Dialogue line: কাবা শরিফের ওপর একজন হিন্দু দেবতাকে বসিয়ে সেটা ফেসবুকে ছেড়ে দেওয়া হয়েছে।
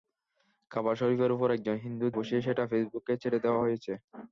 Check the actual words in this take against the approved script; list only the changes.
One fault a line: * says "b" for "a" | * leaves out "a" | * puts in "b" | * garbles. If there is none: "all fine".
* leaves out "দেবতাকে"